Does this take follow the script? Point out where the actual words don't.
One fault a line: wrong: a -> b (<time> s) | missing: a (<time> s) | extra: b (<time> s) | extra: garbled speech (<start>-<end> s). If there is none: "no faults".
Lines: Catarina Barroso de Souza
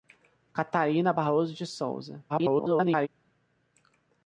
extra: garbled speech (2.3-3.1 s)